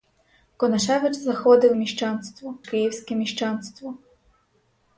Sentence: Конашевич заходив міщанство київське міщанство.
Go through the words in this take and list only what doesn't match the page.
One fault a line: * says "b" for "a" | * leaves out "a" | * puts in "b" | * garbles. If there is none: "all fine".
all fine